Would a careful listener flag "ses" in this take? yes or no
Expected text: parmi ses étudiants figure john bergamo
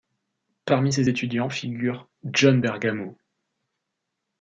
no